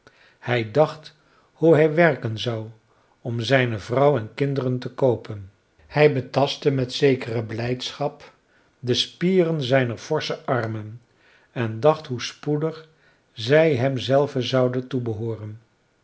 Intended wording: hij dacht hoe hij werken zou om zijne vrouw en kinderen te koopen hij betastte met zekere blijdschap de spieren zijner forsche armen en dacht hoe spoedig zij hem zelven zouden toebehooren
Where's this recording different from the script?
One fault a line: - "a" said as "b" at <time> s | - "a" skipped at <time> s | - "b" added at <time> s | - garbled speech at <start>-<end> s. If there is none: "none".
none